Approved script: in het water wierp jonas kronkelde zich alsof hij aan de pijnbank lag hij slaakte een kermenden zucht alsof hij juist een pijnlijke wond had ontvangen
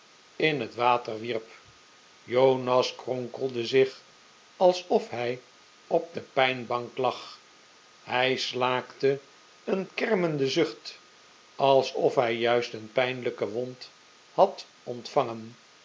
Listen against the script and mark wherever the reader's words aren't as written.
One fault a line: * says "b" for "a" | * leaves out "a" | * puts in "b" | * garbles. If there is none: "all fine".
* says "op" for "aan"